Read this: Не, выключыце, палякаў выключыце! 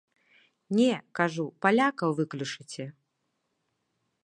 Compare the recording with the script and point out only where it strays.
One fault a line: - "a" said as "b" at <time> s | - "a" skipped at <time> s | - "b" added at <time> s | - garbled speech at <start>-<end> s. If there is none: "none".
- "выключыце" said as "кажу" at 1.2 s